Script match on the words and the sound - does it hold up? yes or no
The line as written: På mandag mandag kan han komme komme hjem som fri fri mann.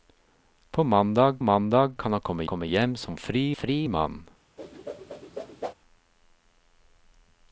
no